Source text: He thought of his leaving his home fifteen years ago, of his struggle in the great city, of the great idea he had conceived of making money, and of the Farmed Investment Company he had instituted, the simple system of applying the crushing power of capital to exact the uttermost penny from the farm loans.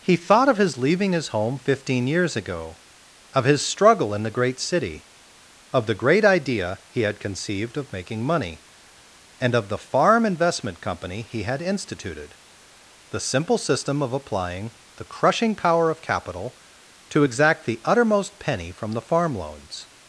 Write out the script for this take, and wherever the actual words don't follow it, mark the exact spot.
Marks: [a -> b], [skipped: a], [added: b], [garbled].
He thought of his leaving his home fifteen years ago, of his struggle in the great city, of the great idea he had conceived of making money, and of the [Farmed -> Farm] Investment Company he had instituted, the simple system of applying the crushing power of capital to exact the uttermost penny from the farm loans.